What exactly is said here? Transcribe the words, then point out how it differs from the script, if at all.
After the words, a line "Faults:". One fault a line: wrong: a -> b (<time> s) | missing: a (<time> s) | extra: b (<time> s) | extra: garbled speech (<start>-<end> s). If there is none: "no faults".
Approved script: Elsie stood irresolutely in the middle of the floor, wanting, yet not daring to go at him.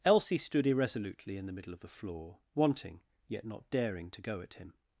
Elsie stood irresolutely in the middle of the floor, wanting, yet not daring to go at him.
Faults:
no faults